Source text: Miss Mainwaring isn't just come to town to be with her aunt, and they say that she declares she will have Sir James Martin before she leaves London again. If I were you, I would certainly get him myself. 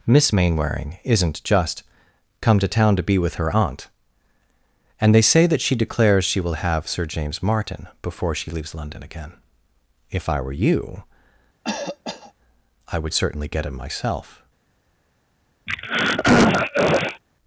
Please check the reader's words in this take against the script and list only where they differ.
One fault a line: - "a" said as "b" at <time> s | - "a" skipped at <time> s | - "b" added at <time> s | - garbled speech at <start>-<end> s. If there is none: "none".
none